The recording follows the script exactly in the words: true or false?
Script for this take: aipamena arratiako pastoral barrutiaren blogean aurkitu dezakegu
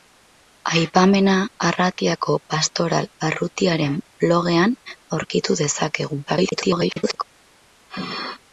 false